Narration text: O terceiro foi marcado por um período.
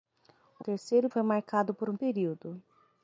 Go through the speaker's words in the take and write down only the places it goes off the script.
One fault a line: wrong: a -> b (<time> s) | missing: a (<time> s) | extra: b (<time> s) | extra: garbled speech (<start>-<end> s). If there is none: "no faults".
no faults